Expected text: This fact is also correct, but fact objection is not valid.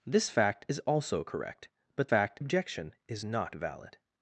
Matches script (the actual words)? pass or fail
pass